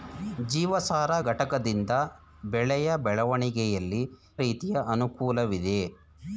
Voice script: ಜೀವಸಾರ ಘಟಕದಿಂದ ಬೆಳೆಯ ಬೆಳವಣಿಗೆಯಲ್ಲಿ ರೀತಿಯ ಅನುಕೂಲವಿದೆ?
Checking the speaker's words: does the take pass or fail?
pass